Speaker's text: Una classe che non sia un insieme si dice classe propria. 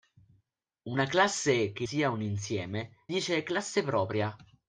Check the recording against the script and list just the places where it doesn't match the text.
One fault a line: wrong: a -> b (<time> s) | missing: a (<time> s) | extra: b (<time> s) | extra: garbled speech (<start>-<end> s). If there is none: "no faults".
missing: non (1.9 s)
missing: si (3.1 s)